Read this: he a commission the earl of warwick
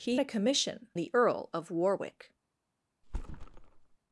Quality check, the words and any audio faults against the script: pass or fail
fail